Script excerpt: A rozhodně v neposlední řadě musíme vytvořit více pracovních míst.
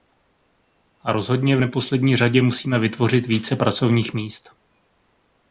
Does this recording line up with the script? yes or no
yes